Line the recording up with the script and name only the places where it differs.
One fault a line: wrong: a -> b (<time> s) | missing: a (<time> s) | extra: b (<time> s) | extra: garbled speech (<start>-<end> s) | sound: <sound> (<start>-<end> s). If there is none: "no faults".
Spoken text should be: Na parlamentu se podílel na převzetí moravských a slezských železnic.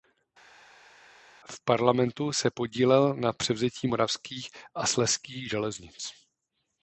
wrong: Na -> V (1.5 s)